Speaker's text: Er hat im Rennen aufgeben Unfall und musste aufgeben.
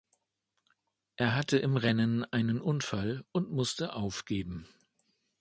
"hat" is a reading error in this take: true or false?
true